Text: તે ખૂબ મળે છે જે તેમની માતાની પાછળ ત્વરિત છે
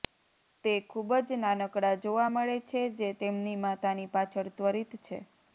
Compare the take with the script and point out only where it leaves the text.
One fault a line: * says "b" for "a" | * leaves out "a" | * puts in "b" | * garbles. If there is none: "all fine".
* puts in "જ નાનકડા જોવા"